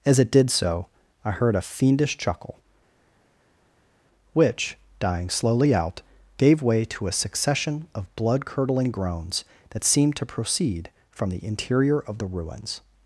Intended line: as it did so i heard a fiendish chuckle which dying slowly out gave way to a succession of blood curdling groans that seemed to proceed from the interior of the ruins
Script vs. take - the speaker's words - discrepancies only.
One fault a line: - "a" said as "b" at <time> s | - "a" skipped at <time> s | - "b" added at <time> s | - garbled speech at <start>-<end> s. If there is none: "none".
none